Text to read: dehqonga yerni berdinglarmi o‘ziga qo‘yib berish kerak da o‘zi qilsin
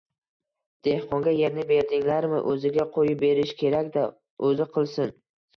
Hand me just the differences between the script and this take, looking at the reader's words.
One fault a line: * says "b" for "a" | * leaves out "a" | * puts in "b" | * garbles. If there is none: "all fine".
all fine